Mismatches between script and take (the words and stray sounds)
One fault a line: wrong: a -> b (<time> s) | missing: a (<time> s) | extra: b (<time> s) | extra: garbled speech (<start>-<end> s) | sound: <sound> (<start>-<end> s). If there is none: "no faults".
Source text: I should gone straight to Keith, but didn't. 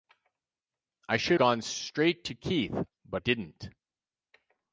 no faults